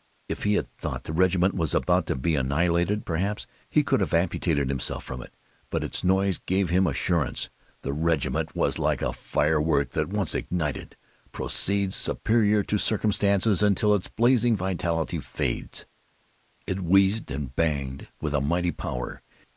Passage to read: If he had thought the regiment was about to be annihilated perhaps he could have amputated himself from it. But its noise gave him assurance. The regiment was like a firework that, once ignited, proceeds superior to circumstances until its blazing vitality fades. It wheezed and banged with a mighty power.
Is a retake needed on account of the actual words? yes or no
no